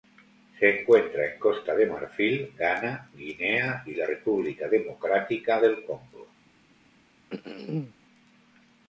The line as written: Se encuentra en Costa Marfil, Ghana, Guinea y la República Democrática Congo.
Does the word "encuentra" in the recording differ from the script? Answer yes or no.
no